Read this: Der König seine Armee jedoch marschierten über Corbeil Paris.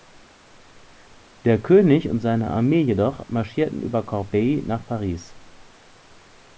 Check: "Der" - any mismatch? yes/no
no